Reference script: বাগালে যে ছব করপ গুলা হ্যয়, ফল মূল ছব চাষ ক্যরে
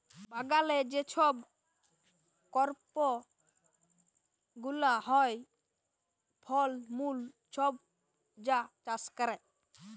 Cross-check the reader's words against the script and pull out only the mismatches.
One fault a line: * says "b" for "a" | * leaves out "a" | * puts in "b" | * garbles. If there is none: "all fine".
* puts in "যা"